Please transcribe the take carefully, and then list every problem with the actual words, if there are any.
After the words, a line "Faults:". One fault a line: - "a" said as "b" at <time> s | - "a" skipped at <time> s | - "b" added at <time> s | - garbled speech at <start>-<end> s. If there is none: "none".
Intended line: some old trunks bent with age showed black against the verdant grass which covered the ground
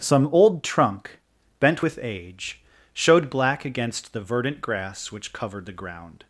some old trunk bent with age showed black against the verdant grass which covered the ground
Faults:
- "trunks" said as "trunk" at 0.6 s